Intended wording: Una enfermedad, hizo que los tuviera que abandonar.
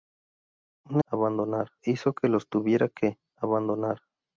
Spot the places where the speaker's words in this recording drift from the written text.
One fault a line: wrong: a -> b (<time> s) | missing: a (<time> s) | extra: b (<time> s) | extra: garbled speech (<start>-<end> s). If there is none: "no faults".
wrong: enfermedad -> abandonar (1.1 s)